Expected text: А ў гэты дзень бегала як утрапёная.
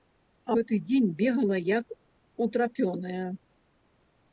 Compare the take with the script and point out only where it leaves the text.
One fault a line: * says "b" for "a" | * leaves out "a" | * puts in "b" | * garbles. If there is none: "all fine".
* leaves out "ў"